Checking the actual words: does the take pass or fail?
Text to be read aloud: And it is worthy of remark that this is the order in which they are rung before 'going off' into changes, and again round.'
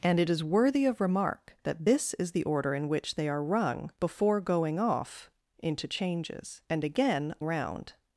pass